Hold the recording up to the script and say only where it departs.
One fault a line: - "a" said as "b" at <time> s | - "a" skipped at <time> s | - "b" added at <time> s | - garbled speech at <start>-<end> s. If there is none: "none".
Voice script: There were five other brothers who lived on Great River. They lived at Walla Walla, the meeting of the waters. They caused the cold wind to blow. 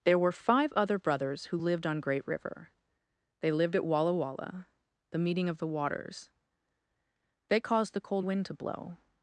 none